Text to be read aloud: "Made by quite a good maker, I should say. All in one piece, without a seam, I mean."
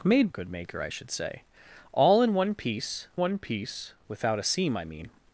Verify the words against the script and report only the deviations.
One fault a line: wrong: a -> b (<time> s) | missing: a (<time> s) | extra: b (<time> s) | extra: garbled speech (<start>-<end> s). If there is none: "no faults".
missing: by quite (0.3 s)
extra: one piece (3.2 s)